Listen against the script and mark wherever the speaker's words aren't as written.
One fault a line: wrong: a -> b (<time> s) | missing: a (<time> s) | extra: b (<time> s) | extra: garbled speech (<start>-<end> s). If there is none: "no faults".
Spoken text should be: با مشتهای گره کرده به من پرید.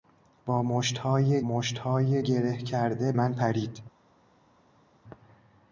extra: مشتهای (1.4 s)
missing: به (3.1 s)